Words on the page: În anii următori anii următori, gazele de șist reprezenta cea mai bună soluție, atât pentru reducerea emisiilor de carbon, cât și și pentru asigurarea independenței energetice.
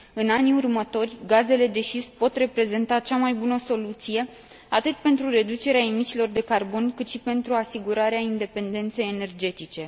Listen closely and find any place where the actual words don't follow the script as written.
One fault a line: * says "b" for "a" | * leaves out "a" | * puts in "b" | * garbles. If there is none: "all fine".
* leaves out "anii următori"
* puts in "pot"
* leaves out "și"